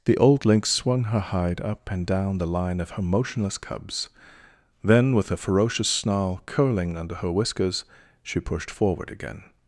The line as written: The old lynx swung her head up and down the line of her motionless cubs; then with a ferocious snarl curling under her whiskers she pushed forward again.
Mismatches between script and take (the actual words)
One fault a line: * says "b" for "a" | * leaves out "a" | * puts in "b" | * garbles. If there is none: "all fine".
* says "hide" for "head"